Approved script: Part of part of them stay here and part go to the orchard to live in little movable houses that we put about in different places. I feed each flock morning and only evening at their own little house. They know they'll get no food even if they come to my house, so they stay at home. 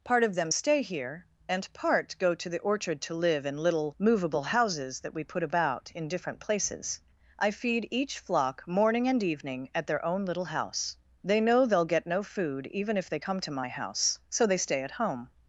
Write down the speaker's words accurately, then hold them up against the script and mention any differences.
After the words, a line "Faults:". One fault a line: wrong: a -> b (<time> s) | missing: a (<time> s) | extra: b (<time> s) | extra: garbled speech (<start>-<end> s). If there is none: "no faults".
Part of them stay here and part go to the orchard to live in little movable houses that we put about in different places. I feed each flock morning and evening at their own little house. They know they'll get no food even if they come to my house, so they stay at home.
Faults:
missing: part of (0.3 s)
missing: only (9.2 s)